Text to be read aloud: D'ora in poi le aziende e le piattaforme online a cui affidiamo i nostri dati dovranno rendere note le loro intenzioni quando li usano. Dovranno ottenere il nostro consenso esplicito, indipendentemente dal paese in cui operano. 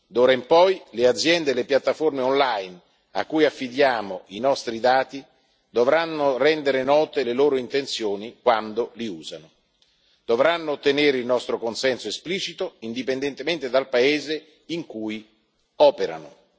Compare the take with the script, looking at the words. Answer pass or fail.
pass